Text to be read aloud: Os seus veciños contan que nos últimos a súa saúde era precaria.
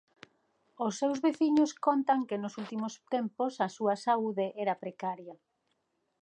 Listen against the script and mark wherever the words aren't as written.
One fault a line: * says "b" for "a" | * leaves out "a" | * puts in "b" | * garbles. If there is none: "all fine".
* puts in "tempos"